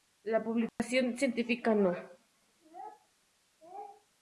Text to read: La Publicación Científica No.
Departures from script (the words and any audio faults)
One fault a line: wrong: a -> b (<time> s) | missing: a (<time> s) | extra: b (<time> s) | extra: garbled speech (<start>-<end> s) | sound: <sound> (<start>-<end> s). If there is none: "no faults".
sound: dropout (0.7-0.8 s)